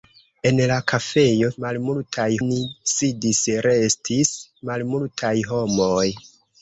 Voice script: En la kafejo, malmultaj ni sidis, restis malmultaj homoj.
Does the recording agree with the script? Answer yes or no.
yes